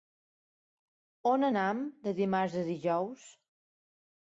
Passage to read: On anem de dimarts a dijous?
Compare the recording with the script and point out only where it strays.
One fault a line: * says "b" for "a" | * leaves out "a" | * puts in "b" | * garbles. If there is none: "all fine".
all fine